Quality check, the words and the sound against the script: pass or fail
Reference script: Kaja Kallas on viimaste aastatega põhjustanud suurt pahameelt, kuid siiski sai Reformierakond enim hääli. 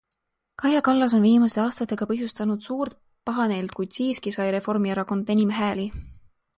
pass